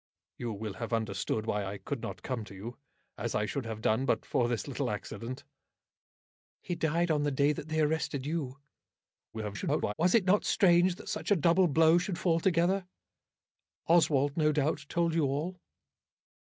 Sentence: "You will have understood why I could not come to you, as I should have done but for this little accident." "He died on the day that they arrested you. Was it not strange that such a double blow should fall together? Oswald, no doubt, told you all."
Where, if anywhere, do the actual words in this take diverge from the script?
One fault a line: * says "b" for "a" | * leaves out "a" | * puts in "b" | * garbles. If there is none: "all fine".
* garbles